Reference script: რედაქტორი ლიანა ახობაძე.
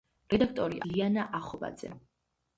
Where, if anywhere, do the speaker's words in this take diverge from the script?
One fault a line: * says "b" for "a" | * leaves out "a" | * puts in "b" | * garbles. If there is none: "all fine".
all fine